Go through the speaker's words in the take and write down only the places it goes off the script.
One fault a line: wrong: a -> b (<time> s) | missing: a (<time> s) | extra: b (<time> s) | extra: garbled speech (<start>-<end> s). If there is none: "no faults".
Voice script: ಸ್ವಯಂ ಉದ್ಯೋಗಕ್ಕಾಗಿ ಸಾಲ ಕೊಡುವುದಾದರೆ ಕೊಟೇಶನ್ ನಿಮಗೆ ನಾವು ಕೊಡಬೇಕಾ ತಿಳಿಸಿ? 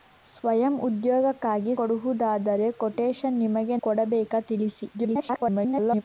missing: ಸಾಲ (1.7 s)
missing: ನಾವು (3.8 s)
extra: garbled speech (4.9-6.0 s)